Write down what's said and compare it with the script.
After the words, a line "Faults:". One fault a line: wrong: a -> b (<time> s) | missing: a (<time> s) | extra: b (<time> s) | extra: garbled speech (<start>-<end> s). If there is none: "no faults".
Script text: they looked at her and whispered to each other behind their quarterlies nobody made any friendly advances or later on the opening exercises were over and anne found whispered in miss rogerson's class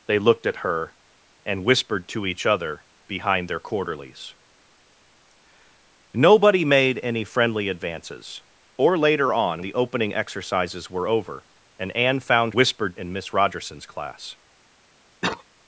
they looked at her and whispered to each other behind their quarterlies nobody made any friendly advances or later on the opening exercises were over and anne found whispered in miss rogerson's class
Faults:
no faults